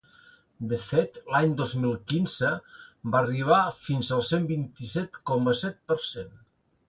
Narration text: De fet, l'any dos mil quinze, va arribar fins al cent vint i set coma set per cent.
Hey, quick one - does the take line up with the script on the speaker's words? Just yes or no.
yes